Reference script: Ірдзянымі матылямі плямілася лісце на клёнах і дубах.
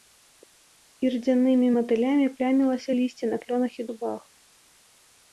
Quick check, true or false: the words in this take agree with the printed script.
true